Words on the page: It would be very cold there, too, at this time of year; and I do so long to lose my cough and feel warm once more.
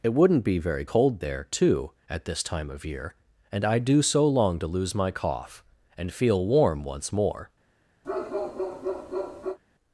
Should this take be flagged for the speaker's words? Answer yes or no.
yes